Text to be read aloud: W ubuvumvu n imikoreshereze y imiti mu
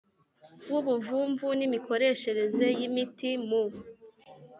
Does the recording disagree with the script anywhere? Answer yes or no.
no